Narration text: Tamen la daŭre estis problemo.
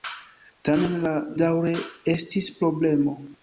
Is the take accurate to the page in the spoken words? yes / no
yes